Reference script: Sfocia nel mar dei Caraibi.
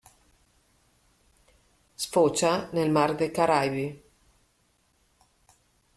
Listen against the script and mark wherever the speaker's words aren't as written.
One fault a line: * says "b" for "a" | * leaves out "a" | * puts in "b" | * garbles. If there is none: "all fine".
all fine